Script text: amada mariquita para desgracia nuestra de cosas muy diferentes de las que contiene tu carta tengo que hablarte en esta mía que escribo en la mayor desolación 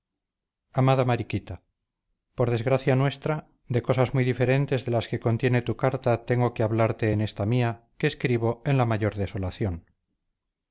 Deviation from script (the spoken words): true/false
true